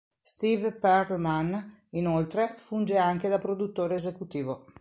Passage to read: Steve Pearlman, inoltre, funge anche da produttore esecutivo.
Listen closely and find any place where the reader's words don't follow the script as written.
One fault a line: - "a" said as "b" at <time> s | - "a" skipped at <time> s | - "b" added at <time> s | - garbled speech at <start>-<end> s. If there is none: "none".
none